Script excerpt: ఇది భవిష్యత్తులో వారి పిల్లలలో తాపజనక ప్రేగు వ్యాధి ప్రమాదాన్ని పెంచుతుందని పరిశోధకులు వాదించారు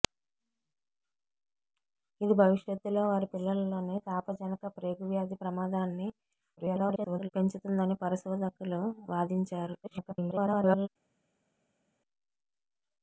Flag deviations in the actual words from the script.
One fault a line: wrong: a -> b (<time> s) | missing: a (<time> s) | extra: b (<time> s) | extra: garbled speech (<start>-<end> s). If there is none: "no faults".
extra: garbled speech (6.6-7.3 s)
extra: garbled speech (9.8-10.9 s)